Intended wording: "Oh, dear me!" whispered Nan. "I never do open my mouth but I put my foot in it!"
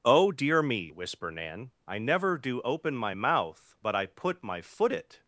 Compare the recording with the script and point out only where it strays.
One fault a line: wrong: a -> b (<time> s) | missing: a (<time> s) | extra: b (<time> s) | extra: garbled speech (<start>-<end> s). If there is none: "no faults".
wrong: whispered -> whisper (0.9 s)
missing: in (4.9 s)